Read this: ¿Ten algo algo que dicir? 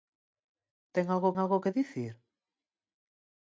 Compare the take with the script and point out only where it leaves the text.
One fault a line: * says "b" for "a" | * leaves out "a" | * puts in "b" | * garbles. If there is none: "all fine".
all fine